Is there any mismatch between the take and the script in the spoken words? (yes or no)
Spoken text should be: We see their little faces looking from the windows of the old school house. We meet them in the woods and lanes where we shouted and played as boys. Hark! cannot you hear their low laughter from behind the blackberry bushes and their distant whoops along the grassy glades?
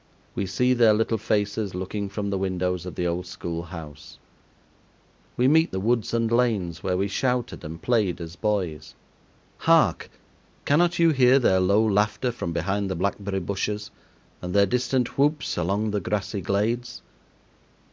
yes